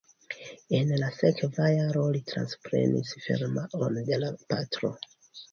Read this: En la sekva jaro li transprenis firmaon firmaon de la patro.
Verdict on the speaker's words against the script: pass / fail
fail